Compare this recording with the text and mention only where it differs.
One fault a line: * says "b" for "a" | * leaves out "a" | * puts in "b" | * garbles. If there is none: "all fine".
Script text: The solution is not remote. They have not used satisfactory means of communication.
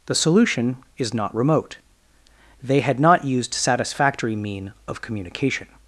* says "had" for "have"
* says "mean" for "means"